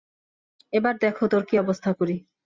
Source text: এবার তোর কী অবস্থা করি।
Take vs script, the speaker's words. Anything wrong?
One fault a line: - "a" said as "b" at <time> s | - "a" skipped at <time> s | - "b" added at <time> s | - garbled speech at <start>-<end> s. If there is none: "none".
- "দেখ" added at 1.0 s